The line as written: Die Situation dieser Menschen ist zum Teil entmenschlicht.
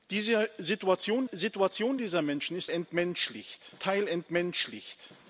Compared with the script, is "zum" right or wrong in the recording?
wrong